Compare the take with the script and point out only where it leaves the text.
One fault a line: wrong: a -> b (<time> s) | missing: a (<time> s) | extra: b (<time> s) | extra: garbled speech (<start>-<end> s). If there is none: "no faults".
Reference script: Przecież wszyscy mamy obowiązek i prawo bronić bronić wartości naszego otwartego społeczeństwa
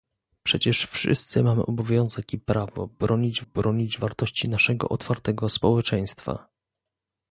no faults